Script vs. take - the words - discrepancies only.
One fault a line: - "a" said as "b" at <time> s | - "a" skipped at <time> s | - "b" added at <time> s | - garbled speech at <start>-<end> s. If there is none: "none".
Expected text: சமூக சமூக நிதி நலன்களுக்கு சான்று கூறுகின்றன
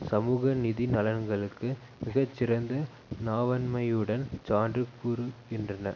- "சமூக" skipped at 0.5 s
- "மிக சிறந்த நாவன்மையுடன்" added at 2.0 s